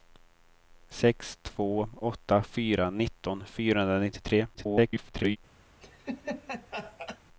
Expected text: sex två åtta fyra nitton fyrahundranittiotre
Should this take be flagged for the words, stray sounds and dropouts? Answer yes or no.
yes